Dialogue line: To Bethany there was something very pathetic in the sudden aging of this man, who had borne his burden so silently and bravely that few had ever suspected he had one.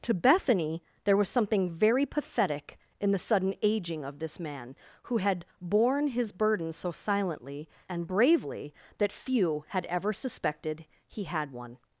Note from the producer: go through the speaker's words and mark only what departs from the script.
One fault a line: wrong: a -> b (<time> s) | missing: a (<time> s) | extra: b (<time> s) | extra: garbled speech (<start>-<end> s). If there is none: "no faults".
no faults